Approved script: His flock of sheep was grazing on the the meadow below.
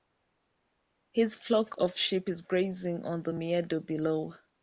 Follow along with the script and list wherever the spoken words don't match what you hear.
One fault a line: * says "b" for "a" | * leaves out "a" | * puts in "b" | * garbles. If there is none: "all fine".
* says "is" for "was"
* leaves out "the"